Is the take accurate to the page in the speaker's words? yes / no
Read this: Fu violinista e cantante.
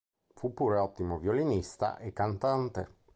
no